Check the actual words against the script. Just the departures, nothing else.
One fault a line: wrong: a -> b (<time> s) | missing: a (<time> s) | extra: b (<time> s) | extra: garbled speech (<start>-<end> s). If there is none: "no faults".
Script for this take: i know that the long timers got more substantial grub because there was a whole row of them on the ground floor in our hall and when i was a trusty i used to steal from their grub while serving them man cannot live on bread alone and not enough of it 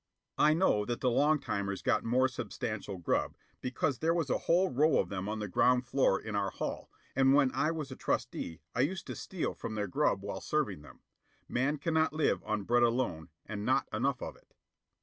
no faults